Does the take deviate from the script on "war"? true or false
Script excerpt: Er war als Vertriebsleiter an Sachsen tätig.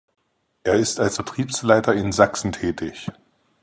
true